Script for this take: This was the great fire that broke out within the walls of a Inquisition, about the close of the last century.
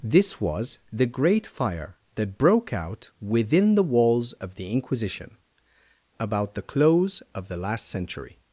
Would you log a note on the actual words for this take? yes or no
yes